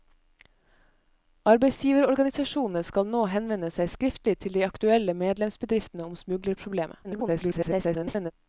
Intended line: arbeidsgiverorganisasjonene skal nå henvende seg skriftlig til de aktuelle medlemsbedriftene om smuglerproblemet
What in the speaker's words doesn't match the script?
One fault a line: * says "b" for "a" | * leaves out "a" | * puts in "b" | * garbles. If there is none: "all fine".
* garbles